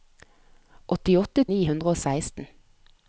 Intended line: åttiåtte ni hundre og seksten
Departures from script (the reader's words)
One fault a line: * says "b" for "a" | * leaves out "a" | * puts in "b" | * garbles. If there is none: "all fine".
all fine